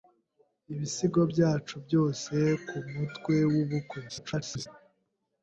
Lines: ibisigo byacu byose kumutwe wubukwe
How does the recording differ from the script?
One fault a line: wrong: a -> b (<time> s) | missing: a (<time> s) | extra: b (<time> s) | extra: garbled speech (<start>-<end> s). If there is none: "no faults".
extra: garbled speech (4.1-4.7 s)